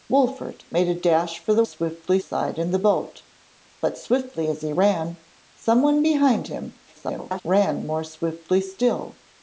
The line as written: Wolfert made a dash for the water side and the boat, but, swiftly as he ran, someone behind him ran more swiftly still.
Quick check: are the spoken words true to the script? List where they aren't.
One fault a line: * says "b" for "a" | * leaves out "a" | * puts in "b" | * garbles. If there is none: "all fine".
* says "swiftly" for "water"
* garbles